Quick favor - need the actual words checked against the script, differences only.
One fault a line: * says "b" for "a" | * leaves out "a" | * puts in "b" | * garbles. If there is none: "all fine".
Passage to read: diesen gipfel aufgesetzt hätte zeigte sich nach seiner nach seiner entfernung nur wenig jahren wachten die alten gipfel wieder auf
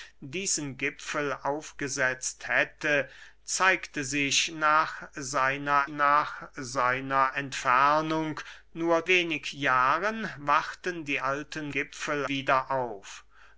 all fine